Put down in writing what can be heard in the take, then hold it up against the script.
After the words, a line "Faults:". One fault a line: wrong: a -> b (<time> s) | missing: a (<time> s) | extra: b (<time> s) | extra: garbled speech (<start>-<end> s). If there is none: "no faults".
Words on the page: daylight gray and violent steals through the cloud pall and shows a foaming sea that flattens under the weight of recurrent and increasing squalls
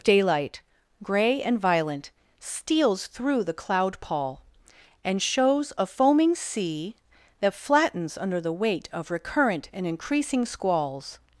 daylight gray and violent steals through the cloud pall and shows a foaming sea that flattens under the weight of recurrent and increasing squalls
Faults:
no faults